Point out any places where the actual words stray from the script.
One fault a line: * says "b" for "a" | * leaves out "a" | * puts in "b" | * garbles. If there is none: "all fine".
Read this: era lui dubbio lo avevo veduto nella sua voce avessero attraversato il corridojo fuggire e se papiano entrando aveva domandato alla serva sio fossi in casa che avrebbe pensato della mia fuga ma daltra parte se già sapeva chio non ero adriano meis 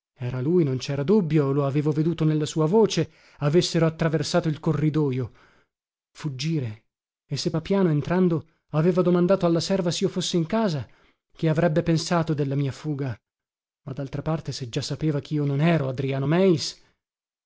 * puts in "non cera"